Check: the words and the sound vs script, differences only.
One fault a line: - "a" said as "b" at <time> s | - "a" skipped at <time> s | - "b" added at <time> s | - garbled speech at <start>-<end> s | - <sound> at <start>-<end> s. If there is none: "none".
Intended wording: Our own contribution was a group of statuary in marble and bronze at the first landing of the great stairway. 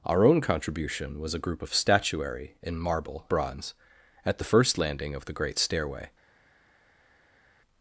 - "and" skipped at 3.3 s